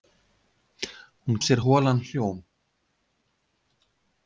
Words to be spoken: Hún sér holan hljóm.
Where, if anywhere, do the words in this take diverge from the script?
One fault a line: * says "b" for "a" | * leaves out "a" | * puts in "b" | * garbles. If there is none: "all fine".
all fine